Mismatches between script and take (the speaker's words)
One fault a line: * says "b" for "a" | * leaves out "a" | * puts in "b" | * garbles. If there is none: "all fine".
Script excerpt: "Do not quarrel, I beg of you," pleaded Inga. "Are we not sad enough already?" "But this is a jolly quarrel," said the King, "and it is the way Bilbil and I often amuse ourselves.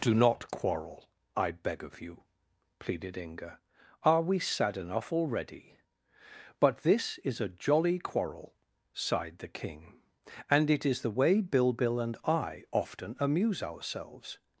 * leaves out "not"
* says "sighed" for "said"